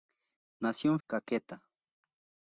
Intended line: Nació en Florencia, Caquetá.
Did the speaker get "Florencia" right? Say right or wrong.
wrong